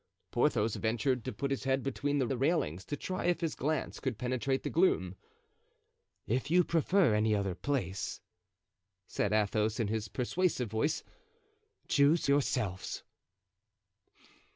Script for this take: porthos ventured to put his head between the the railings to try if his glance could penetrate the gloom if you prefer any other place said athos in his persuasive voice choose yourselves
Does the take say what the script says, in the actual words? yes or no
yes